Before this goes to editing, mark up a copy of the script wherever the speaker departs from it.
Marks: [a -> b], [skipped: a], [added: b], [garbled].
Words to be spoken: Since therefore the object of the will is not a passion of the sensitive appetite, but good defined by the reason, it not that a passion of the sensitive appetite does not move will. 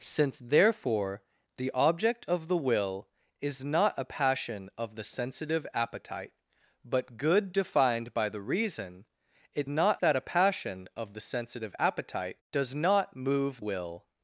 Since therefore the object of the will is not a passion of the sensitive appetite, but good defined by the reason, it not that a passion of the sensitive appetite does not move will.